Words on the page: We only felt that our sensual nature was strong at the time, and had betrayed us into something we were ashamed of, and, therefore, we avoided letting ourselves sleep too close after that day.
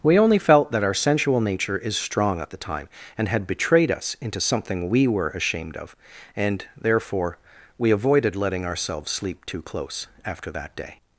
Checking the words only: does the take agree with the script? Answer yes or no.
no